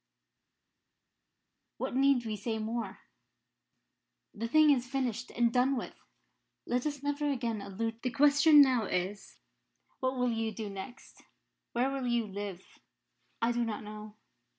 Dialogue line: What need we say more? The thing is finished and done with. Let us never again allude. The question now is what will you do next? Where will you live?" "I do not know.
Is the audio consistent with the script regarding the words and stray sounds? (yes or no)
yes